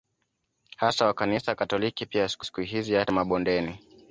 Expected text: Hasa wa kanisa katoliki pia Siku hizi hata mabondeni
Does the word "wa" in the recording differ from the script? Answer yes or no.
no